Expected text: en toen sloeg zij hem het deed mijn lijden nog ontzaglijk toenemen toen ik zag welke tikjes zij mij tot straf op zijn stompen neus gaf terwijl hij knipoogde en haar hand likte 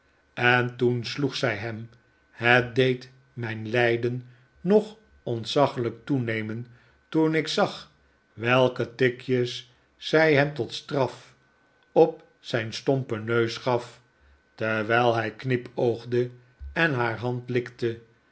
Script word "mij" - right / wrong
wrong